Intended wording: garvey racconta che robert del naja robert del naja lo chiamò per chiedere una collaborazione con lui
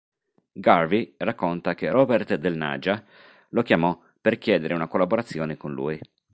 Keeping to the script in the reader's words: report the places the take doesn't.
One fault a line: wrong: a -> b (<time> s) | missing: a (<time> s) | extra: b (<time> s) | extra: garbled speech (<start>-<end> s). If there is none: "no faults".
missing: robert del naja (3.0 s)